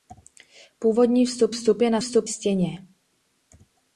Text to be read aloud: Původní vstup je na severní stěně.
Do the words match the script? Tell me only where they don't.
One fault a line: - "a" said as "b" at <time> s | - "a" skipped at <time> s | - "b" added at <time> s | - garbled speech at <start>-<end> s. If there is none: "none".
- "vstup" added at 1.5 s
- "severní" said as "vstup" at 2.0 s